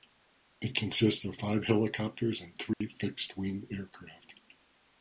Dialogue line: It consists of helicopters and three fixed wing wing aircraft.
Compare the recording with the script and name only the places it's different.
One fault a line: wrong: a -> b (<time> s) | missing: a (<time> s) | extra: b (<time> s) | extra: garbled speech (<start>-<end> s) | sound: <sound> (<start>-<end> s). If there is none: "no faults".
extra: five (1.3 s)
sound: dropout (2.7-2.8 s)
missing: wing (3.7 s)